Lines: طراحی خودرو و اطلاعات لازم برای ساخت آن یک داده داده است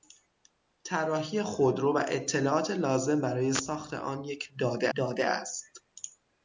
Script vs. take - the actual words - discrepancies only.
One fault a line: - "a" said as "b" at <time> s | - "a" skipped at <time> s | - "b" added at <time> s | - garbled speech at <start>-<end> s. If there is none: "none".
none